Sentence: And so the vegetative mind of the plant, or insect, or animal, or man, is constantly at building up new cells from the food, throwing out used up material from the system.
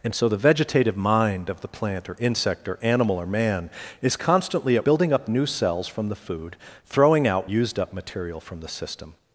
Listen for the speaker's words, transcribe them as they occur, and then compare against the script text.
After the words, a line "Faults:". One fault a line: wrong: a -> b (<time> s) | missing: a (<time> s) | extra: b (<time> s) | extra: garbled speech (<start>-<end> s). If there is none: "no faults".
And so the vegetative mind of the plant, or insect, or animal, or man, is constantly at building up new cells from the food, throwing out used up material from the system.
Faults:
no faults